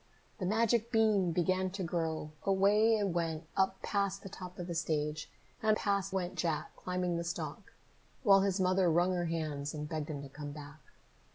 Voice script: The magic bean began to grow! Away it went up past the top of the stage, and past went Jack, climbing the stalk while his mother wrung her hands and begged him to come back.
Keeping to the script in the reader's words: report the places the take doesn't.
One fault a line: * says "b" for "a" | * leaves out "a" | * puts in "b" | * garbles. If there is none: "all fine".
all fine